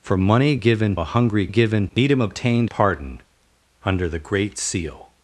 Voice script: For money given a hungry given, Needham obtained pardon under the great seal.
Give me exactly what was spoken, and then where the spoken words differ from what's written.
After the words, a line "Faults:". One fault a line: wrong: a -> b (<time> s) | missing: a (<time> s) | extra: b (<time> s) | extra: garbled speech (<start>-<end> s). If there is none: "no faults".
For money given a hungry given, Needham obtained pardon under the great seal.
Faults:
no faults